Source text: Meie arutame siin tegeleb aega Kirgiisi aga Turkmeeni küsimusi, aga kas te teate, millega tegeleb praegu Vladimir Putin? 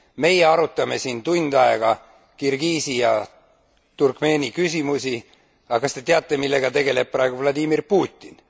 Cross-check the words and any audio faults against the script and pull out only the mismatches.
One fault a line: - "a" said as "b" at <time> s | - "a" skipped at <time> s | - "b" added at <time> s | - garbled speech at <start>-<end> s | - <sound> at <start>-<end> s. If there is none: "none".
- "tegeleb" said as "tund" at 1.2 s
- "aga" said as "ja" at 3.0 s